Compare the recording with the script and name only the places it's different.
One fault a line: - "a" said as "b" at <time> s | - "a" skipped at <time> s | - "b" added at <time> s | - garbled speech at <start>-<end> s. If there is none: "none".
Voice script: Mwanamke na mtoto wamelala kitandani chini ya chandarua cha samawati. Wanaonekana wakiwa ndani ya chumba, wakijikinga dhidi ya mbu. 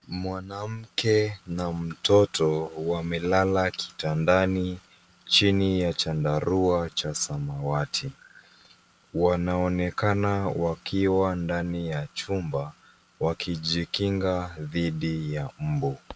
none